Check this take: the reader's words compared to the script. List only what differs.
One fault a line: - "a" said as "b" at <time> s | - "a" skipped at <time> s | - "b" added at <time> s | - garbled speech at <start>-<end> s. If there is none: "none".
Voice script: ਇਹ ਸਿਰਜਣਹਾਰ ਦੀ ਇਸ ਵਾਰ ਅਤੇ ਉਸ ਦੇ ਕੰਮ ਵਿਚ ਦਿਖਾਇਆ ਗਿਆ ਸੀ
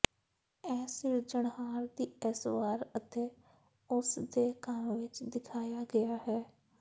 - "ਸੀ" said as "ਹੈ" at 6.3 s